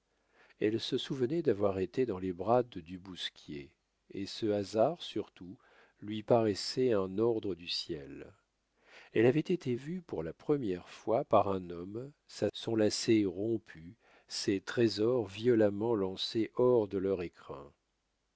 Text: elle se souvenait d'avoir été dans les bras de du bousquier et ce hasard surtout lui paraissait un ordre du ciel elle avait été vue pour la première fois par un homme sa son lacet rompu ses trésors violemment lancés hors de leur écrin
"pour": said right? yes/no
yes